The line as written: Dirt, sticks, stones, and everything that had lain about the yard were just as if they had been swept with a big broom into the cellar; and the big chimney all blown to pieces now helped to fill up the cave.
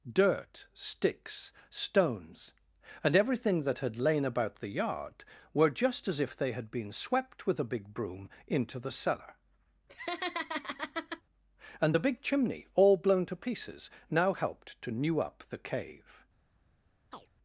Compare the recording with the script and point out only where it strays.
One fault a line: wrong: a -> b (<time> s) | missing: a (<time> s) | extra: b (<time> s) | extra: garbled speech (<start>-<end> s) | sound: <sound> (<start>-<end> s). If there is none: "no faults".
sound: laugh (9.9-11.2 s)
wrong: fill -> new (14.9 s)
sound: chirp (17.1-17.3 s)